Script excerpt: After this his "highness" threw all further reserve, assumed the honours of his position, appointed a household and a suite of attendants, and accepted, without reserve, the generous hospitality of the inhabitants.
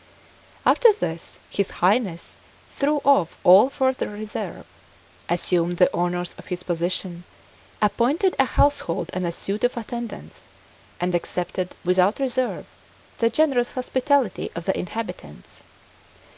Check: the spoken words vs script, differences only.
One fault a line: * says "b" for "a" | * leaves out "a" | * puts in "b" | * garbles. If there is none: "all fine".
* puts in "off"